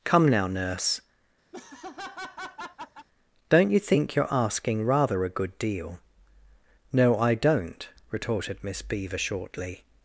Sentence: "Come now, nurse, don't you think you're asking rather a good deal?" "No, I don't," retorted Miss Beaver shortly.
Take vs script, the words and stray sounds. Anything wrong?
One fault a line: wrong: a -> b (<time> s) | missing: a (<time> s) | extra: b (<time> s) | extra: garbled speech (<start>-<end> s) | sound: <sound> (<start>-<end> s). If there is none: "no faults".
sound: laugh (1.5-3.1 s)